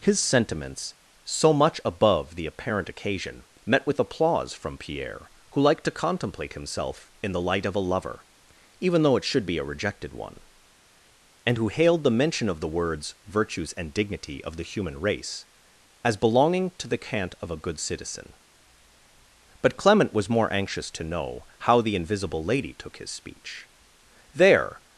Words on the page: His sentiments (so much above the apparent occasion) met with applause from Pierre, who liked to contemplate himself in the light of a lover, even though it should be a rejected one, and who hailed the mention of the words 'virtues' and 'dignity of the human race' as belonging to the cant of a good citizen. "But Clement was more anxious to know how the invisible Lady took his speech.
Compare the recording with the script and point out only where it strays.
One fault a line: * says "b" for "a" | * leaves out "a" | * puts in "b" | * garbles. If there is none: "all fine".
* puts in "There"